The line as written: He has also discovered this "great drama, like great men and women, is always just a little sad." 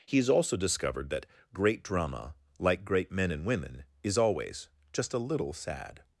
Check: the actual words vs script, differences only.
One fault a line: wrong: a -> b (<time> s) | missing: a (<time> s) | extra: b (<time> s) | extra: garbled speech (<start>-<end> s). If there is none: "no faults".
wrong: this -> that (1.1 s)